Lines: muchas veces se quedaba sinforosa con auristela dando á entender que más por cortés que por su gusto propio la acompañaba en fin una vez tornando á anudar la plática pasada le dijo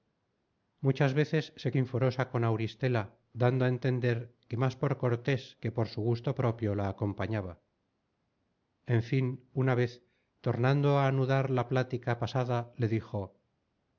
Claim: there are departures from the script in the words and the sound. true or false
true